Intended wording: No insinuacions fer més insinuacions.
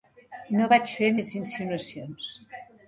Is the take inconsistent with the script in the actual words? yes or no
yes